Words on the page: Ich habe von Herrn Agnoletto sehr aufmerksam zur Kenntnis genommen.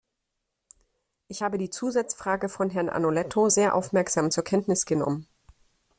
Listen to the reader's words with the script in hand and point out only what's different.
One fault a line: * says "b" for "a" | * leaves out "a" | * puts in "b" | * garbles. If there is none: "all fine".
* puts in "die Zusatzfrage"